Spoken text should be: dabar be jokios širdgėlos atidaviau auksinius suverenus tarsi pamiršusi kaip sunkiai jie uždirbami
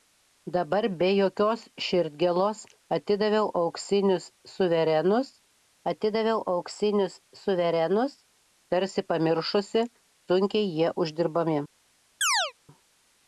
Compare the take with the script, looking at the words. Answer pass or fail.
fail